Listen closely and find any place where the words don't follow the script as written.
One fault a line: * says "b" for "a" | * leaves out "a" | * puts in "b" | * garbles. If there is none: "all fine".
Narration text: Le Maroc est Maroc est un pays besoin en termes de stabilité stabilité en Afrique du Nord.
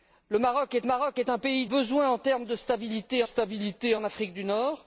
all fine